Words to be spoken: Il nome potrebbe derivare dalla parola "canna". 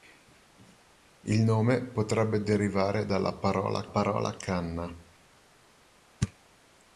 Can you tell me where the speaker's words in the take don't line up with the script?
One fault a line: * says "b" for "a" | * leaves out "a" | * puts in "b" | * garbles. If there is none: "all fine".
* puts in "parola"